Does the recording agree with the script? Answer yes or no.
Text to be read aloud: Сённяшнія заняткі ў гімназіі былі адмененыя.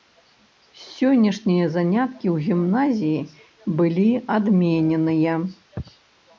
yes